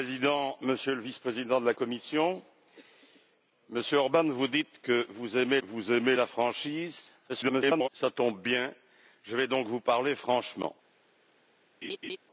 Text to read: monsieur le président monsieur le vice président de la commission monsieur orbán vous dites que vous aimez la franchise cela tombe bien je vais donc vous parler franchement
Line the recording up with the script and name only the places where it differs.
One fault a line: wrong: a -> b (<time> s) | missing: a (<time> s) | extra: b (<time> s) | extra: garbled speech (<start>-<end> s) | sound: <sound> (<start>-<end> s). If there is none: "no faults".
extra: vous aimez (5.6 s)
extra: garbled speech (7.3-7.9 s)
sound: laugh (11.8-12.2 s)